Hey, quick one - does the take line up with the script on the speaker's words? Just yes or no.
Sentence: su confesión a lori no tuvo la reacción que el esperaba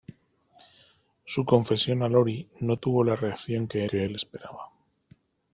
no